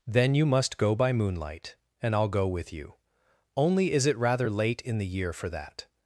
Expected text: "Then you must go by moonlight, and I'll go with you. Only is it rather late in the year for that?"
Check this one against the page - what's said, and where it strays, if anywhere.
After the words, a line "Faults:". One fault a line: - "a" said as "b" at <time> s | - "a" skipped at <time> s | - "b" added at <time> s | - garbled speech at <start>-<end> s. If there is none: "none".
"Then you must go by moonlight, and I'll go with you. Only is it rather late in the year for that?"
Faults:
none